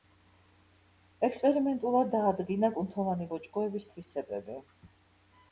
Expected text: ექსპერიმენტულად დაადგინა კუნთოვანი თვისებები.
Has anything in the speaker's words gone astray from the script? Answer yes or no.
yes